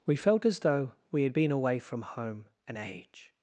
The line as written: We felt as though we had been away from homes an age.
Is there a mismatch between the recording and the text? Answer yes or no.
yes